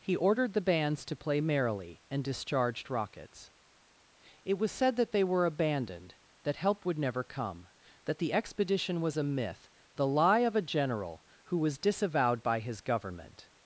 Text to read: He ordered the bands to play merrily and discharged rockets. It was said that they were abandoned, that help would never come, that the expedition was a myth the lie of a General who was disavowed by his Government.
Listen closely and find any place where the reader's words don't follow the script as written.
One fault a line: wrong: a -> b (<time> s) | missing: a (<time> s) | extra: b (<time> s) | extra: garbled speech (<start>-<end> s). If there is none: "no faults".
no faults